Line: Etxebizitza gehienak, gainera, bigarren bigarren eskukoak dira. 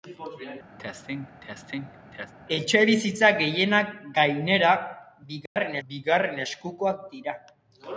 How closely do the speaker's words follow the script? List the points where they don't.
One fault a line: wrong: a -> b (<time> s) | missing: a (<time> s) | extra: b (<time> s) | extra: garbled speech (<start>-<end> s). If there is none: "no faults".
no faults